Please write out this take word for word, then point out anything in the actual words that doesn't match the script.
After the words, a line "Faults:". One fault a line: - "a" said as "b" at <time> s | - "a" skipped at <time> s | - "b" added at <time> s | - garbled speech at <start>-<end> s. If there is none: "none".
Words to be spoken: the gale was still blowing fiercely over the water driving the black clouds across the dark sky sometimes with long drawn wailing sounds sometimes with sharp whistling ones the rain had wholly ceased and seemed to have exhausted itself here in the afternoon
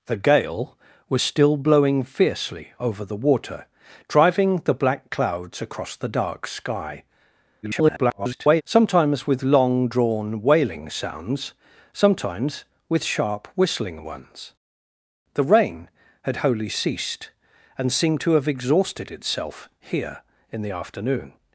the gale was still blowing fiercely over the water driving the black clouds across the dark sky [garbled] sometimes with long drawn wailing sounds sometimes with sharp whistling ones the rain had wholly ceased and seemed to have exhausted itself here in the afternoon
Faults:
- garbled speech at 7.6-8.6 s